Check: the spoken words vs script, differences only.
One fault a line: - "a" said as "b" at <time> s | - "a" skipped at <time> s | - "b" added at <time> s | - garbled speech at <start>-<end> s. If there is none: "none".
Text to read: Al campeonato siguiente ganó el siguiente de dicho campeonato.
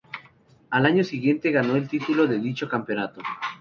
- "campeonato" said as "año" at 0.8 s
- "siguiente" said as "título" at 1.9 s